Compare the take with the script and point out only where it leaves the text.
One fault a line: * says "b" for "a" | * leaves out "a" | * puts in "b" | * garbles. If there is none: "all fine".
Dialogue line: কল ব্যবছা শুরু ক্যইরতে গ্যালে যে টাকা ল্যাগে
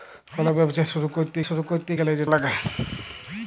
* puts in "শুরু ক্যইরতে"
* leaves out "টাকা"